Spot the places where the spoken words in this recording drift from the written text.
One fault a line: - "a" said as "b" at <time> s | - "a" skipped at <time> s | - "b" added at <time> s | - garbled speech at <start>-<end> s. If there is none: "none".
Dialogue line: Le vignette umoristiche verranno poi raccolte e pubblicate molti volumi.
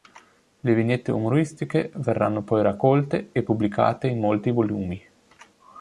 - "in" added at 4.1 s